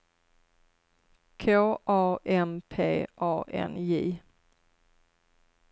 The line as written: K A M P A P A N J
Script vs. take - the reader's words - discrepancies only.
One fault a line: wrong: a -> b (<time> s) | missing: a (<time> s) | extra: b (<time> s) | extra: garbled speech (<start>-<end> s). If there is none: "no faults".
missing: P A (3.4 s)